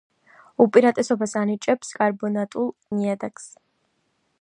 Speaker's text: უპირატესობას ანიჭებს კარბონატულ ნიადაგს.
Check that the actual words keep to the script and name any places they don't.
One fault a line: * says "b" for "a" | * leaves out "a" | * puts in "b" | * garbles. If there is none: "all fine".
all fine